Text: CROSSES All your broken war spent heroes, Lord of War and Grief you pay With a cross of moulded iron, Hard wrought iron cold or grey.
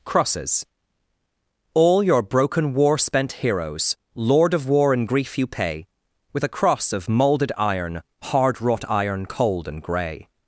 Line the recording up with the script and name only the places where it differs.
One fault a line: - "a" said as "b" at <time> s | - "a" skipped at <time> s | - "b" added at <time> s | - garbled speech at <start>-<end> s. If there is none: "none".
- "or" said as "and" at 9.7 s